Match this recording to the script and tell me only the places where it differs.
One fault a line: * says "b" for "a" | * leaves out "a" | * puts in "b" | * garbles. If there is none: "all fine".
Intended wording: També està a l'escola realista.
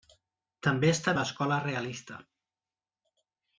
all fine